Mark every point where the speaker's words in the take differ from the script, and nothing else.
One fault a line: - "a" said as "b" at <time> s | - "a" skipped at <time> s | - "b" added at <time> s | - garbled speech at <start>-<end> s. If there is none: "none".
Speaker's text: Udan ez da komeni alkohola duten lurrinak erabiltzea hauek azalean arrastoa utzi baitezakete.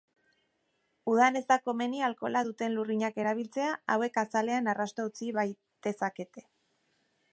none